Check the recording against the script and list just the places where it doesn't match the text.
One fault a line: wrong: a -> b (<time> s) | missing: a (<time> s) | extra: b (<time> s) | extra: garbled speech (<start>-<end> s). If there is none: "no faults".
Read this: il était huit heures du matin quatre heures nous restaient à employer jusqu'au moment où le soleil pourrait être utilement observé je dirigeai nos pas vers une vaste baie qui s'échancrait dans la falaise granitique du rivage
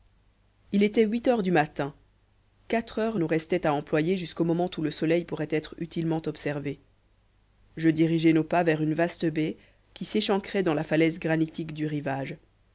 no faults